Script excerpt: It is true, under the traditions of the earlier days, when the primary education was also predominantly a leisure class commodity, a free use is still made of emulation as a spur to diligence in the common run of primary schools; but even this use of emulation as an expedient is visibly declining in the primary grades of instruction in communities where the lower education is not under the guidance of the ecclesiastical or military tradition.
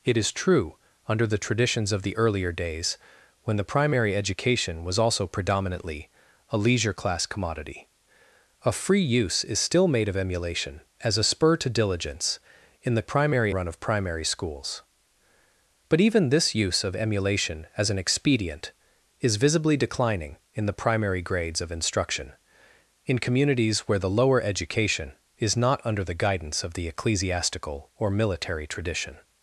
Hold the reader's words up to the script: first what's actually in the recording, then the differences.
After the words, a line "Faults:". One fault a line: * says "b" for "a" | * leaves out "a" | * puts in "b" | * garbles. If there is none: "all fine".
It is true, under the traditions of the earlier days, when the primary education was also predominantly a leisure class commodity, a free use is still made of emulation as a spur to diligence in the primary run of primary schools; but even this use of emulation as an expedient is visibly declining in the primary grades of instruction in communities where the lower education is not under the guidance of the ecclesiastical or military tradition.
Faults:
* says "primary" for "common"